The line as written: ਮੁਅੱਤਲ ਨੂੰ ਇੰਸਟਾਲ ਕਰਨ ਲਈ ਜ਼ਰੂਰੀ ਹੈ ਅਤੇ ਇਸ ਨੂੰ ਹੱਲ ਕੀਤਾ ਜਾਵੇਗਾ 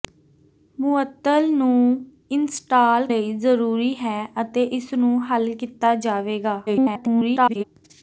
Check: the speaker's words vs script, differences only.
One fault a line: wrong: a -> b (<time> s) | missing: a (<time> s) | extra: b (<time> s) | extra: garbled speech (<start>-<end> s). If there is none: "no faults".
missing: ਕਰਨ (3.0 s)
extra: garbled speech (6.7-7.6 s)